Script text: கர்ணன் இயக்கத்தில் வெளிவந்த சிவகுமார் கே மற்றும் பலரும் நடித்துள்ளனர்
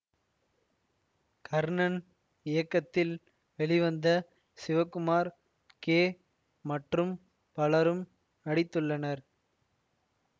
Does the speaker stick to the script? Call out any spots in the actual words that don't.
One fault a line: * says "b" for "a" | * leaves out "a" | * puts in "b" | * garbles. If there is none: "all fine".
all fine